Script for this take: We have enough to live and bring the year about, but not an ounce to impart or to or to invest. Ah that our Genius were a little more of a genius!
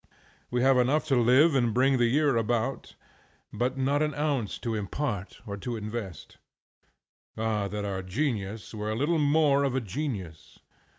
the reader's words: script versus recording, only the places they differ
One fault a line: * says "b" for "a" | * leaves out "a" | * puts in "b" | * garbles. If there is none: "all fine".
* leaves out "or to"